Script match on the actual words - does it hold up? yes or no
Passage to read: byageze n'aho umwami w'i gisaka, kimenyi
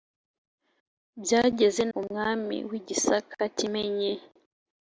no